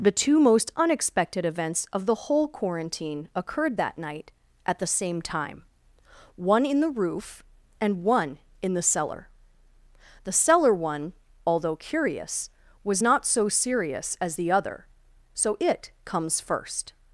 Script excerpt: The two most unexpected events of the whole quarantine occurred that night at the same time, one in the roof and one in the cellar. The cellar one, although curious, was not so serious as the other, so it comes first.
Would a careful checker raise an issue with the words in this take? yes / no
no